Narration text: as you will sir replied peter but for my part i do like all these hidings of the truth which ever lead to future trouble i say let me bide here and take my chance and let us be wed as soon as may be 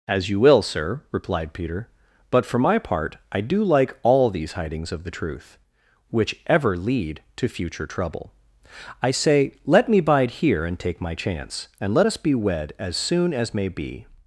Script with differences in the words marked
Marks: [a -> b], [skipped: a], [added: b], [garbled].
as you will sir replied peter but for my part i do like all these hidings of the truth which ever lead to future trouble i say let me bide here and take my chance and let us be wed as soon as may be